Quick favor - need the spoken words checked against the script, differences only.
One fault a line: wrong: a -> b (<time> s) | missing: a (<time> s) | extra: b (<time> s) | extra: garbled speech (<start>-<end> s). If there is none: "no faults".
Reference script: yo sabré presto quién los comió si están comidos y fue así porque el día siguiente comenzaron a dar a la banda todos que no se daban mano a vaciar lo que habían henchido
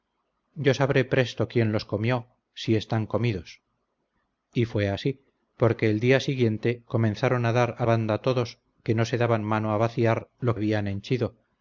missing: la (7.8 s)
missing: que (10.5 s)